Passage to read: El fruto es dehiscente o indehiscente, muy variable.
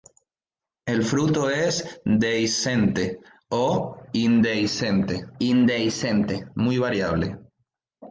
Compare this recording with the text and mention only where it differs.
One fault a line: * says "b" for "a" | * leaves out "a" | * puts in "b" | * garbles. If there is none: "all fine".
* puts in "indehiscente"